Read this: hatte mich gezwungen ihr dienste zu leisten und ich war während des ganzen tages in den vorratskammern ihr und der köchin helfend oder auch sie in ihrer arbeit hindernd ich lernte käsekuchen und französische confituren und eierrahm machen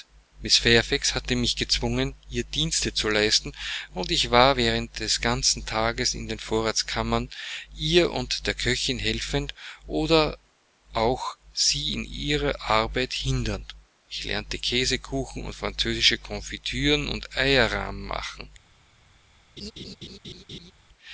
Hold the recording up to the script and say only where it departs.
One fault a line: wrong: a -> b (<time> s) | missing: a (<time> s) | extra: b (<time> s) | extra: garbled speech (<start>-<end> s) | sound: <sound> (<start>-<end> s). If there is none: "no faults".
sound: laugh (19.6-20.7 s)